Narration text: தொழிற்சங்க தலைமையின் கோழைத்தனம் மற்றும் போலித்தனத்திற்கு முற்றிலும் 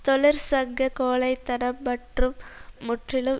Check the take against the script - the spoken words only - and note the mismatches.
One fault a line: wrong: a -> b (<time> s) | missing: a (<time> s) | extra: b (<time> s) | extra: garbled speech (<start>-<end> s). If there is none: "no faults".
missing: தலைமையின் (0.9 s)
missing: போலித்தனத்திற்கு (2.4 s)